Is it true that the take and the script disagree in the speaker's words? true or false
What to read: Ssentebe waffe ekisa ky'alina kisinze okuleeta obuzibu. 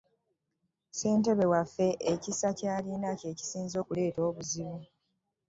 true